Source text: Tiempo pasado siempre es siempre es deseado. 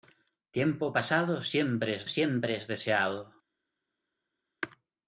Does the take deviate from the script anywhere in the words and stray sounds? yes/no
no